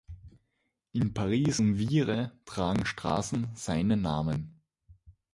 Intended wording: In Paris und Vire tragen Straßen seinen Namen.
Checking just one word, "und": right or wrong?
right